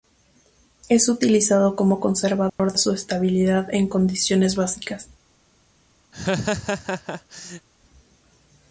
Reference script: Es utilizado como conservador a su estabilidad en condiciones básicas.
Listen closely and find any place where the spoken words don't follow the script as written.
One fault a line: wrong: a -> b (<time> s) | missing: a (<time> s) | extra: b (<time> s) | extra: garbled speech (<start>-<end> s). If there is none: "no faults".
no faults